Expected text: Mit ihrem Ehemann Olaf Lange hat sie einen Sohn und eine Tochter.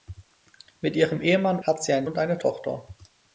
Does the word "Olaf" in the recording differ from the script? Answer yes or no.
yes